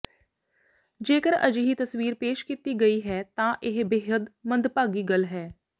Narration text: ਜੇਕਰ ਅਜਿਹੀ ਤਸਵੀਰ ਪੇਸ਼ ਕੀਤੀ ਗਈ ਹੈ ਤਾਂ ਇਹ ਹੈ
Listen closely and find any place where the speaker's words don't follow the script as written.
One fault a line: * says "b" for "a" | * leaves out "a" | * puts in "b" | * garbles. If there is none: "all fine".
* puts in "ਬੇਹੱਦ ਮੰਦਭਾਗੀ ਗੱਲ"